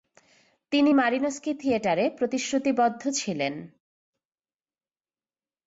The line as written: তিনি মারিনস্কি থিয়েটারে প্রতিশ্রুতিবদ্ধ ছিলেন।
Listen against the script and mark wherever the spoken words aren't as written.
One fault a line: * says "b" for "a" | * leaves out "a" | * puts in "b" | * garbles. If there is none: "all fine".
all fine